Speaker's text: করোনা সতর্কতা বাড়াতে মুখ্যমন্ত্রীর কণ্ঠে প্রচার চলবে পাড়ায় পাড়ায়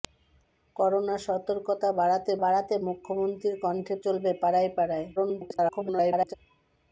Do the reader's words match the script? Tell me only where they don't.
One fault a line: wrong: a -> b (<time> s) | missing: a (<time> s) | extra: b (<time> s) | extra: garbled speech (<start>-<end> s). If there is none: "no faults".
extra: বাড়াতে (2.4 s)
missing: প্রচার (3.9 s)
extra: garbled speech (5.2-6.3 s)